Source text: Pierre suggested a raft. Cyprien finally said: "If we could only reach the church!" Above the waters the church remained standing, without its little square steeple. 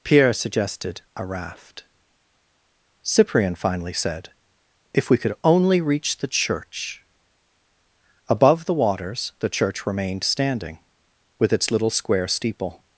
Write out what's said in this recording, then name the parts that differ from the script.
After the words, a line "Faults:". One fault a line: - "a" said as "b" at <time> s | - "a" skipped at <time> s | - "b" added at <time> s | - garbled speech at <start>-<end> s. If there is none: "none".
Pierre suggested a raft. Cyprien finally said: "If we could only reach the church!" Above the waters the church remained standing, with its little square steeple.
Faults:
- "without" said as "with" at 11.4 s